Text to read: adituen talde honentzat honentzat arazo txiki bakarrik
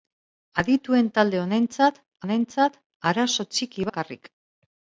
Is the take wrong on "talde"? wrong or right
right